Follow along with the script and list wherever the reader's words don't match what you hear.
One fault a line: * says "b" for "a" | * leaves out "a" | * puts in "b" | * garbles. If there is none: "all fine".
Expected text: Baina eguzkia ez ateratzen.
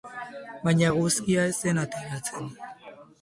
* puts in "zen"